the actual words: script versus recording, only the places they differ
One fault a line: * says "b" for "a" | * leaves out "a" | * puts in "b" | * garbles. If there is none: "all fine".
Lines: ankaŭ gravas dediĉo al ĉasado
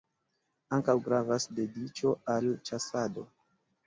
all fine